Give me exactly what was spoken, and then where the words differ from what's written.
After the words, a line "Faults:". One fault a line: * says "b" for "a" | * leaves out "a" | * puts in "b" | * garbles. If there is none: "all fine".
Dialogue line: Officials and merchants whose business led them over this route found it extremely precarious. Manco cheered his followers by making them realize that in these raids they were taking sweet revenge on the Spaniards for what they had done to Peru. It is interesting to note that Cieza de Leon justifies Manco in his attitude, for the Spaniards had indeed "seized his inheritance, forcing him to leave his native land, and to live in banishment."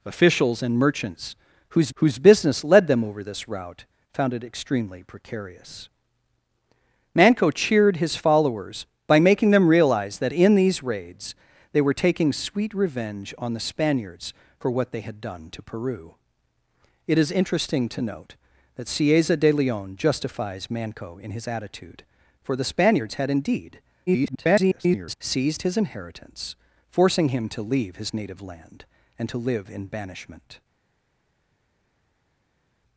Officials and merchants whose whose business led them over this route found it extremely precarious. Manco cheered his followers by making them realize that in these raids they were taking sweet revenge on the Spaniards for what they had done to Peru. It is interesting to note that Cieza de Leon justifies Manco in his attitude, for the Spaniards had indeed [garbled] "seized his inheritance, forcing him to leave his native land, and to live in banishment."
Faults:
* puts in "whose"
* garbles